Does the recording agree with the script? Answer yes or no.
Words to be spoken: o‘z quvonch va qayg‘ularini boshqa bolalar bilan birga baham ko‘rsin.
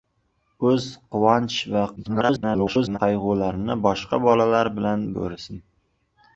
no